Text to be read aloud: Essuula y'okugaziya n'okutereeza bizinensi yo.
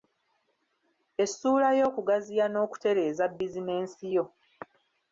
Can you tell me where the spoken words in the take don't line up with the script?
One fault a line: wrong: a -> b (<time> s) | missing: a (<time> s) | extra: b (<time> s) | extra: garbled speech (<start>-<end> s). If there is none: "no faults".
no faults